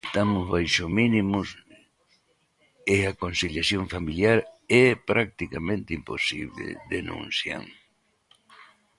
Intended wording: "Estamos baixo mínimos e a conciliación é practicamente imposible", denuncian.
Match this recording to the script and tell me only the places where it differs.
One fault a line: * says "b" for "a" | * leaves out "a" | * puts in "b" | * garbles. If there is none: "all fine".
* puts in "familiar"